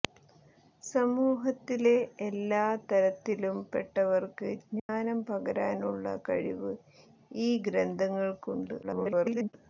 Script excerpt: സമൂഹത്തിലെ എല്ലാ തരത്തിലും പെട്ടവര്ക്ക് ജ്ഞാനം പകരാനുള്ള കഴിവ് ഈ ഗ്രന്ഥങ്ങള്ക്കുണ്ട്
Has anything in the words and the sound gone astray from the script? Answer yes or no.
yes